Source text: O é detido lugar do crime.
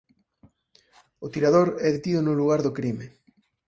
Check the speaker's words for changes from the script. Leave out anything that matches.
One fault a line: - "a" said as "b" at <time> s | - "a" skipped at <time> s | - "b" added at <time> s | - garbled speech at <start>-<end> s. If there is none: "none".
- "tirador" added at 1.3 s
- "no" added at 2.2 s